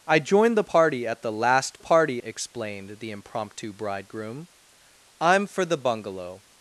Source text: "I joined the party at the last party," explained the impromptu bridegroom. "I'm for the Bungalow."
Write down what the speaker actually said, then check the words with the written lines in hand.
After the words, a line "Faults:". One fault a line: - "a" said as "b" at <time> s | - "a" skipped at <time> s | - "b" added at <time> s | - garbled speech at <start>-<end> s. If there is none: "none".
"I joined the party at the last party," explained the impromptu bridegroom. "I'm for the Bungalow."
Faults:
none